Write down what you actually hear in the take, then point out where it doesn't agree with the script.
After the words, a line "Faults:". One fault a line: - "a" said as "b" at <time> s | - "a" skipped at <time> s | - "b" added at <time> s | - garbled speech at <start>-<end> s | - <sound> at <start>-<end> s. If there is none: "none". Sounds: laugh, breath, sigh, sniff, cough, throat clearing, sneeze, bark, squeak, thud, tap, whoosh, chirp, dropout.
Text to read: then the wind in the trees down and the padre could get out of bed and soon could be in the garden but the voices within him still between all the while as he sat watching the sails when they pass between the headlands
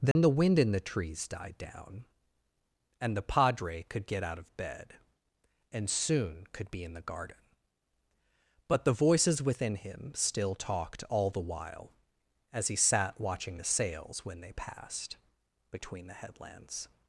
then the wind in the trees died down and the padre could get out of bed and soon could be in the garden but the voices within him still talked all the while as he sat watching the sails when they passed between the headlands
Faults:
- dropout at 0.1-0.2 s
- "died" added at 1.3 s
- "between" said as "talked" at 10.6 s
- "pass" said as "passed" at 14.5 s